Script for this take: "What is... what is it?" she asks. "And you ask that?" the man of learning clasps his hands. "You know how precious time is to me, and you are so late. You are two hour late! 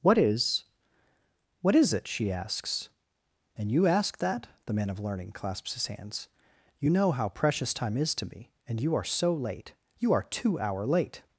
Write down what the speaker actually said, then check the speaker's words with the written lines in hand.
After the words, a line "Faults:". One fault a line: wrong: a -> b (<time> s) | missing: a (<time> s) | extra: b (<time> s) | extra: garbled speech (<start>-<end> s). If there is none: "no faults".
"What is... what is it?" she asks. "And you ask that?" the man of learning clasps his hands. "You know how precious time is to me, and you are so late. You are two hour late!
Faults:
no faults